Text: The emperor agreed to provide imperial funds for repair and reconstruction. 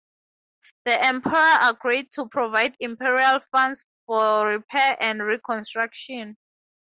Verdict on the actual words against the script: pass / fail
pass